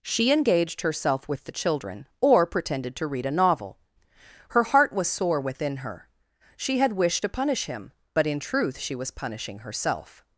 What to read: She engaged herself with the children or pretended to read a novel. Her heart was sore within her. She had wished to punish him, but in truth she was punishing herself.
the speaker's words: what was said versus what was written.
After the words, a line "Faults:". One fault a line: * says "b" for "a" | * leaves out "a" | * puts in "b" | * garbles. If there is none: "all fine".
She engaged herself with the children or pretended to read a novel. Her heart was sore within her. She had wished to punish him, but in truth she was punishing herself.
Faults:
all fine